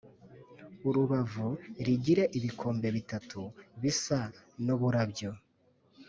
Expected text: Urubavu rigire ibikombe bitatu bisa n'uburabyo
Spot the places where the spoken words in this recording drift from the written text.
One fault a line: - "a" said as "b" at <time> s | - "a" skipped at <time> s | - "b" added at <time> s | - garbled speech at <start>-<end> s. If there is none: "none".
none